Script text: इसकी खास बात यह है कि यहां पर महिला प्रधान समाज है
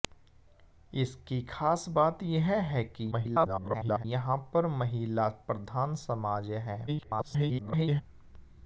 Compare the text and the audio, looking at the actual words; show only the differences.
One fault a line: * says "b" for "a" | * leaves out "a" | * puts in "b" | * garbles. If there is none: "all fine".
* garbles
* garbles